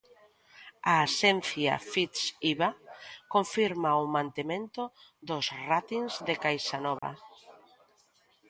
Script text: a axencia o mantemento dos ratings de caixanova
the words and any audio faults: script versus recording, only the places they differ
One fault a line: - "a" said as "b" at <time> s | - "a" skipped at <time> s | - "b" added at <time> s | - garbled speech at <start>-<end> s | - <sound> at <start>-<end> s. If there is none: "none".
- "fitch iba confirma" added at 1.9 s
- dropout at 7.0-7.0 s